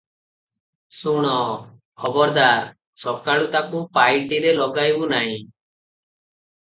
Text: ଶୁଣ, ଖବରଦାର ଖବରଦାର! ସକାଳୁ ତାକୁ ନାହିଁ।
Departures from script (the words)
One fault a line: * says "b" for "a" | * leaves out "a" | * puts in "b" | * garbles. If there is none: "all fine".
* leaves out "ଖବରଦାର"
* puts in "ପାଇଟିରେ ଲଗାଇବୁ"